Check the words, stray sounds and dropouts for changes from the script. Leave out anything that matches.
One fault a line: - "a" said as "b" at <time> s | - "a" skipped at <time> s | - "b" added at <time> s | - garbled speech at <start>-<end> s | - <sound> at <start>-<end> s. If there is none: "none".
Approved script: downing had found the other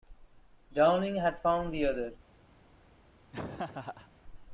- laugh at 3.3-4.1 s